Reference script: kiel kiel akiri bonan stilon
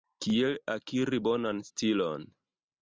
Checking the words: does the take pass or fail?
fail